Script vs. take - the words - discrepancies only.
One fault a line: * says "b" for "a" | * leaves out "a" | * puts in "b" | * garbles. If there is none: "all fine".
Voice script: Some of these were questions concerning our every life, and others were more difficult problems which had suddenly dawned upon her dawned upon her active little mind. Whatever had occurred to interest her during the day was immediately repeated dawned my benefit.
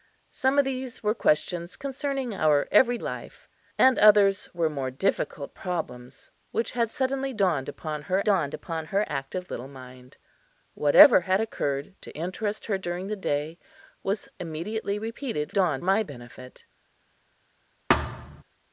all fine